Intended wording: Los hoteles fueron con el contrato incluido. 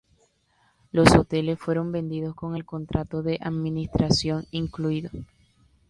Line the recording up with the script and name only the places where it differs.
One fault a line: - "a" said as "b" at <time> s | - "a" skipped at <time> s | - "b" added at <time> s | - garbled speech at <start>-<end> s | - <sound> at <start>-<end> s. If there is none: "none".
- "vendidos" added at 1.9 s
- "de administración" added at 3.2 s